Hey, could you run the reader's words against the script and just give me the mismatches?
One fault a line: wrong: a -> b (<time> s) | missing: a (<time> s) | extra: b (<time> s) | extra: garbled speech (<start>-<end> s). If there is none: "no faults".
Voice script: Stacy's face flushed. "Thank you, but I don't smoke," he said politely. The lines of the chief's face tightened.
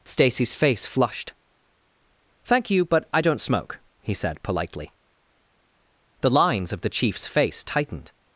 no faults